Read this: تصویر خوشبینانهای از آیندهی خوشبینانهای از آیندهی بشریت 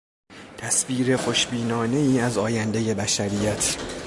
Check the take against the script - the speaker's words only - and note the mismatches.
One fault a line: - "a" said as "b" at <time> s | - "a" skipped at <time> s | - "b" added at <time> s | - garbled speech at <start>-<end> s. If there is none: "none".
- "خوشبینانهای از آیندهی" skipped at 2.9 s